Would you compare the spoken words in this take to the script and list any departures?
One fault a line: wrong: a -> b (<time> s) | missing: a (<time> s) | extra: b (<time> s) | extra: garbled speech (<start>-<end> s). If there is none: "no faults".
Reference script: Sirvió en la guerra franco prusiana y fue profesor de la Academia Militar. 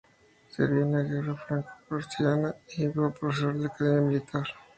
no faults